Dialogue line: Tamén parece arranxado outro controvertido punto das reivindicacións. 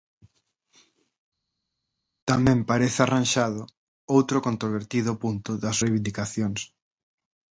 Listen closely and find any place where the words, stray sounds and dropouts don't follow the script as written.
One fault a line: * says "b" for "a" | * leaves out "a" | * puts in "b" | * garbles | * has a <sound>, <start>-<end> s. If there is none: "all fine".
all fine